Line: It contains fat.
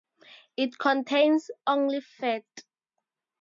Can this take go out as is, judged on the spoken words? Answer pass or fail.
fail